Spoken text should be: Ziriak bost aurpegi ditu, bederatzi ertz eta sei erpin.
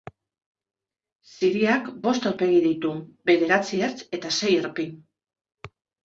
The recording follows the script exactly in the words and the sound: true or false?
true